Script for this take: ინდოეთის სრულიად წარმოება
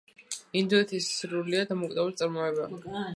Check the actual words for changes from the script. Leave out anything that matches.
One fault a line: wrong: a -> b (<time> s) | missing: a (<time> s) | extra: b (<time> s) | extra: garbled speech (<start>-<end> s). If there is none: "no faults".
extra: დამოუკიდებელი (1.7 s)